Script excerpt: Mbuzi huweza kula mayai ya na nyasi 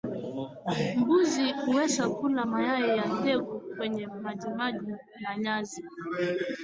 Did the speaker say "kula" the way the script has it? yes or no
yes